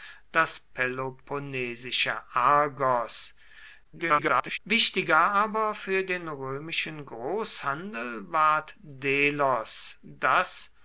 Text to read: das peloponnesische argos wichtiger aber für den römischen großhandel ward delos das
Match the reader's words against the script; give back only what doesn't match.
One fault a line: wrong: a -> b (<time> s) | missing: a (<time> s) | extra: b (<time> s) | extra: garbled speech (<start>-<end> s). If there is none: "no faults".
extra: garbled speech (3.8-4.6 s)